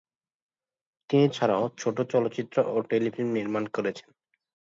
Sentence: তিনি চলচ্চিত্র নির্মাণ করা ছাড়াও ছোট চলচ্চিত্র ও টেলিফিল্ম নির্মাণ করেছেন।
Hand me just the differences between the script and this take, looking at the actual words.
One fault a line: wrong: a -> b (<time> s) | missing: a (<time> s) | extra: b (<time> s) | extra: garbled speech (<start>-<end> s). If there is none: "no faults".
missing: চলচ্চিত্র নির্মাণ করা (1.2 s)